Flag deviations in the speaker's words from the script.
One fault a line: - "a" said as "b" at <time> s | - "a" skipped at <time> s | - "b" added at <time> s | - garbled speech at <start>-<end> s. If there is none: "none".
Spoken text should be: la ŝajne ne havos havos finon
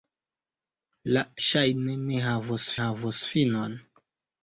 none